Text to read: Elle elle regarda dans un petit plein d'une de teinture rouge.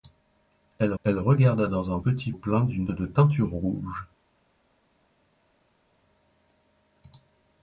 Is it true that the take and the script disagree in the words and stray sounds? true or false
false